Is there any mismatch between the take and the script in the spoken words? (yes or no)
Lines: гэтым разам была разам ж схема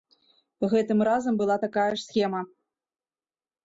yes